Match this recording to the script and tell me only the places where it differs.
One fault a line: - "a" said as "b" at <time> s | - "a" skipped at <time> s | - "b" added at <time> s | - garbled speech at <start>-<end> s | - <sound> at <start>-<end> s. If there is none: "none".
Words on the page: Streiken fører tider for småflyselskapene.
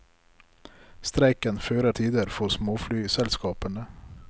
none